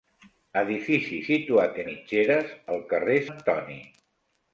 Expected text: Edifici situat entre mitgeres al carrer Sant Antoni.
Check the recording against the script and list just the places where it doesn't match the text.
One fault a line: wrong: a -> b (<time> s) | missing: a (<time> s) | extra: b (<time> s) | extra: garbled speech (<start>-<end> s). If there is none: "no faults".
missing: entre (1.8 s)
missing: Sant (3.2 s)